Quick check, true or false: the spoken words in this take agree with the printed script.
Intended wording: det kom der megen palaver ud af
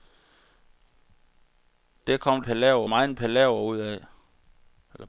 false